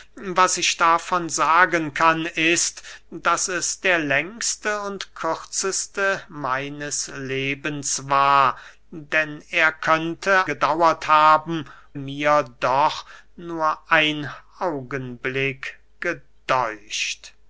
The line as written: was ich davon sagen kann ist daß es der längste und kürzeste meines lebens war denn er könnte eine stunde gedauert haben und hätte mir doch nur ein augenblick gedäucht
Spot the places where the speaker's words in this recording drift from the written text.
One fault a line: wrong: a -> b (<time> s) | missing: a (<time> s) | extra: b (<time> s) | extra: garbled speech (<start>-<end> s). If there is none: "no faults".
missing: eine stunde (10.5 s)
missing: und hätte (11.7 s)